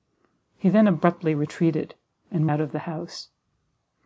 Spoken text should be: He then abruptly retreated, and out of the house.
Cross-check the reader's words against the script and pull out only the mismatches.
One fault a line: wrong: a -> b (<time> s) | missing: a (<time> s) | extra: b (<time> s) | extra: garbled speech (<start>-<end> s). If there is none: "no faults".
no faults